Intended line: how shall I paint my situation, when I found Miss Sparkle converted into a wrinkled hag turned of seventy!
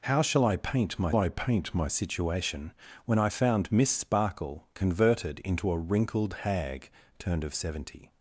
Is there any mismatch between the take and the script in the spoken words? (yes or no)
yes